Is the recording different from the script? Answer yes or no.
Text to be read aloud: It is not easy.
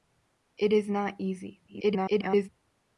yes